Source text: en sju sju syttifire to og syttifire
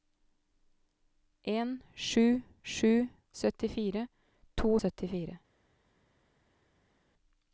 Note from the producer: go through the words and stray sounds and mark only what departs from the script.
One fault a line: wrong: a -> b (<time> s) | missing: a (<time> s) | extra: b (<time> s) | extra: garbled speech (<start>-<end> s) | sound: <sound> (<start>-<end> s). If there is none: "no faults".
no faults